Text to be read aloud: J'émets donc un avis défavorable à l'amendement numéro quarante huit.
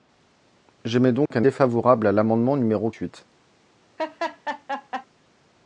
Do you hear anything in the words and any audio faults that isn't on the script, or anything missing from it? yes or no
yes